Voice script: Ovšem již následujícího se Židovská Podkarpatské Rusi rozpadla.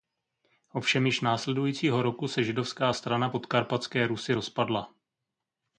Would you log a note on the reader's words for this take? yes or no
yes